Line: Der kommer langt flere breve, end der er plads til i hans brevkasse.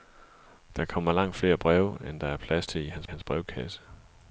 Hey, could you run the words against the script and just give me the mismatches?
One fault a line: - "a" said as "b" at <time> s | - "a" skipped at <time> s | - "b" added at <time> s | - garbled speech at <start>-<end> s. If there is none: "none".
- "hans" added at 3.0 s